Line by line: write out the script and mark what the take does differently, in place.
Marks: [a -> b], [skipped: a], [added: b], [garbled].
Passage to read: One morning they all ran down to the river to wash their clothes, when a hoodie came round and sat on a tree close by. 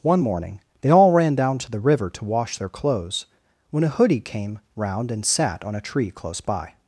One morning they all ran down to the river to wash their clothes, when a hoodie came round and sat on a tree close by.